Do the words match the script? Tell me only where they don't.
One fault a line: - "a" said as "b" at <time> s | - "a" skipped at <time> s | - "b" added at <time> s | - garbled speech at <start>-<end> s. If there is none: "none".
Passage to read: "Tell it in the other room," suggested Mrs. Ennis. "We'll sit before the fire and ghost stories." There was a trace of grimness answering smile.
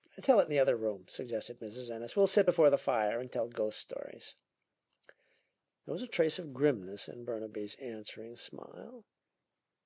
- "tell" added at 3.3 s
- "in Burnaby's" added at 7.1 s